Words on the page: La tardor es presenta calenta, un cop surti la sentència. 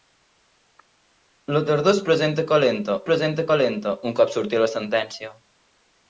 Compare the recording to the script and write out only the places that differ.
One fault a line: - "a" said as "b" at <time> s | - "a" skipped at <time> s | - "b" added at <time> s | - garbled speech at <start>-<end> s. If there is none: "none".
- "presenta calenta" added at 3.1 s